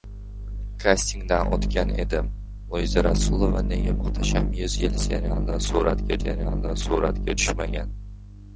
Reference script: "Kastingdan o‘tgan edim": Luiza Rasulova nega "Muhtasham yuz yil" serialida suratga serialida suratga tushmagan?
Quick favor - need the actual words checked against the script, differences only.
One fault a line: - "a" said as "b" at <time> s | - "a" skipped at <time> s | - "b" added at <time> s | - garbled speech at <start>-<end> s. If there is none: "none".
none